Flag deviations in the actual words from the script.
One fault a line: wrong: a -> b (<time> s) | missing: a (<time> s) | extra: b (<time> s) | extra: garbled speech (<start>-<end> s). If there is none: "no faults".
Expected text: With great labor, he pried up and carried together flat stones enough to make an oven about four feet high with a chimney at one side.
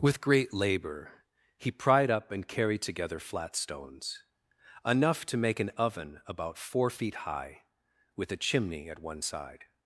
no faults